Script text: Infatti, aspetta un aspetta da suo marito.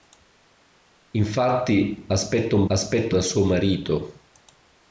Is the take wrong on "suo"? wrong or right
right